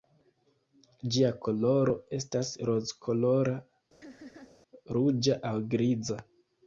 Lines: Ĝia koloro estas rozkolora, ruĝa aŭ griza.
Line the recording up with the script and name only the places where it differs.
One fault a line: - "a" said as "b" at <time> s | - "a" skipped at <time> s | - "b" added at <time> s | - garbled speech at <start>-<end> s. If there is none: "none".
none